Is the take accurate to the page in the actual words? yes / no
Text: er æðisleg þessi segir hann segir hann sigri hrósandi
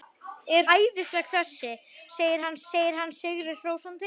yes